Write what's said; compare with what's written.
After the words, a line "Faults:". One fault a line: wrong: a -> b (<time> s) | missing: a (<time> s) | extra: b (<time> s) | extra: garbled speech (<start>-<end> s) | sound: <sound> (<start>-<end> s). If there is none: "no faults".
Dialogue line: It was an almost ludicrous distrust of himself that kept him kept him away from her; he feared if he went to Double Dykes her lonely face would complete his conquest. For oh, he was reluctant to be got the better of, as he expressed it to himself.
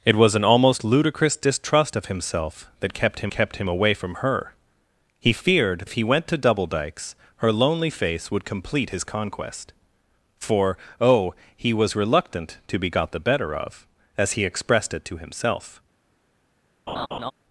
It was an almost ludicrous distrust of himself that kept him kept him away from her; he feared if he went to Double Dykes her lonely face would complete his conquest. For oh, he was reluctant to be got the better of, as he expressed it to himself.
Faults:
sound: laugh (16.9-17.3 s)